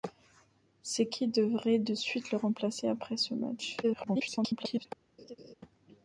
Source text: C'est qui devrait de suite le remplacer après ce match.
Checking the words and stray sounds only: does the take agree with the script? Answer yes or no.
no